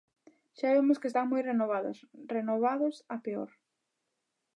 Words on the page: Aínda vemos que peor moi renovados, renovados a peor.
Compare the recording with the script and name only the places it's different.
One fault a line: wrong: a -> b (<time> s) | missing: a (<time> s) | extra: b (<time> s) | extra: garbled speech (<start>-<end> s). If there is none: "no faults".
wrong: Aínda -> Xa (0.6 s)
wrong: peor -> están (1.1 s)